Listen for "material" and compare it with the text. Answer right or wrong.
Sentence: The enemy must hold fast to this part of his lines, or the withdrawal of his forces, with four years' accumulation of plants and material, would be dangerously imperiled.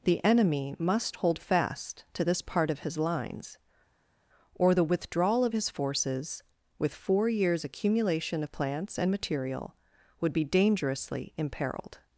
right